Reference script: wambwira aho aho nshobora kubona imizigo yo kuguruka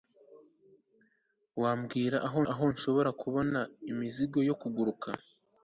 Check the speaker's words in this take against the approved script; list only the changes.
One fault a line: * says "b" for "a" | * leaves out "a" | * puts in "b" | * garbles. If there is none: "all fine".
all fine